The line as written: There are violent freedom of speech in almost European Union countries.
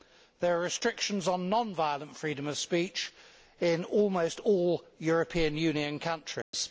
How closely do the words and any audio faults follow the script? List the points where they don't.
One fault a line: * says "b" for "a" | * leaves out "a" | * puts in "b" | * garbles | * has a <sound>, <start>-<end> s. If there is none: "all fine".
* puts in "restrictions on non"
* puts in "all"
* has a dropout, 6.4-6.5 s